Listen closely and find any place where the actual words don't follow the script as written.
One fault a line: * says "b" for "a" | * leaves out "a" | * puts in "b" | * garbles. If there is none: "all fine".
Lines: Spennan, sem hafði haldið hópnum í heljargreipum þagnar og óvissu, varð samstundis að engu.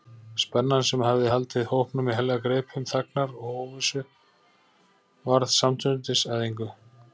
all fine